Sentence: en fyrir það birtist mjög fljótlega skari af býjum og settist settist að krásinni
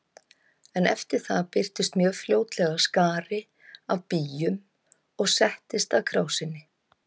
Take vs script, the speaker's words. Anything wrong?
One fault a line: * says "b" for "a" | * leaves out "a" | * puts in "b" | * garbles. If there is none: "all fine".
* says "eftir" for "fyrir"
* leaves out "settist"